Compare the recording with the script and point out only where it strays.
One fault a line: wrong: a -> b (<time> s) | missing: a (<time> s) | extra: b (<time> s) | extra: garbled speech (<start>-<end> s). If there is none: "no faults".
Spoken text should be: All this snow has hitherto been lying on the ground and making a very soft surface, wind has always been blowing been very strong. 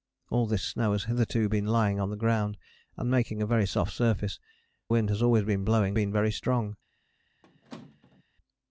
no faults